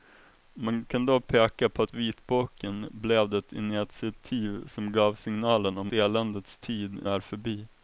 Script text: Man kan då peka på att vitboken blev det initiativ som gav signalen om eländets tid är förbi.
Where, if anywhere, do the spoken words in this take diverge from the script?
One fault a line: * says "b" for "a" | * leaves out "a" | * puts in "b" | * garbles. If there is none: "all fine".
all fine